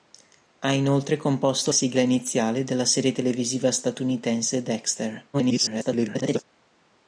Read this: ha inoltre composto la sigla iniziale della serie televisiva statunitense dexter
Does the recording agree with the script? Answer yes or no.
no